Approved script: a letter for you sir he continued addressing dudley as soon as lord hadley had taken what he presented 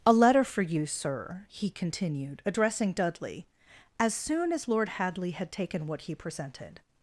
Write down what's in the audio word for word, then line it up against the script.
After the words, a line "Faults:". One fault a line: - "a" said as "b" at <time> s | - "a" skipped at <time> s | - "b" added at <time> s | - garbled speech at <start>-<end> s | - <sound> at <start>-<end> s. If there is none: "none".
a letter for you sir he continued addressing dudley as soon as lord hadley had taken what he presented
Faults:
none